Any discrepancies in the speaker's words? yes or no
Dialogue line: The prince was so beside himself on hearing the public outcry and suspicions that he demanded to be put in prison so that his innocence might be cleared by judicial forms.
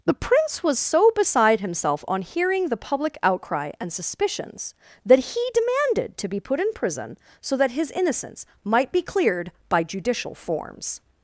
no